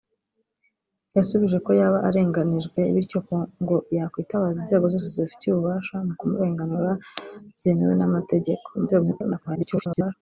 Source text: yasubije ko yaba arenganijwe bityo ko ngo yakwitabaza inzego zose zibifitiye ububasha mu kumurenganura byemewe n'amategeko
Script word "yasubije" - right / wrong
right